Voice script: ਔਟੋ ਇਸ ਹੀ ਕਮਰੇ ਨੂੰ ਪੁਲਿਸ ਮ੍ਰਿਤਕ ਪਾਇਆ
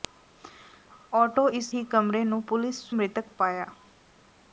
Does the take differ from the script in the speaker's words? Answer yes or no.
no